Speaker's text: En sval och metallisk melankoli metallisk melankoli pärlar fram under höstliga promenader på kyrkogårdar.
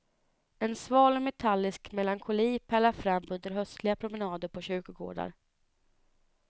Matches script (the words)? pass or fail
fail